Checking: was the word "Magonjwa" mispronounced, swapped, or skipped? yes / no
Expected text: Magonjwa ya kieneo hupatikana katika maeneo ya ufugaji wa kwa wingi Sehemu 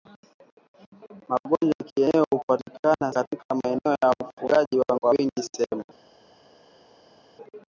no